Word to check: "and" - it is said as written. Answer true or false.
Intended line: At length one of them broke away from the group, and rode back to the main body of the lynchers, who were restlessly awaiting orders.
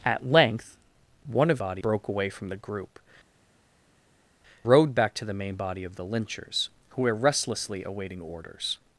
false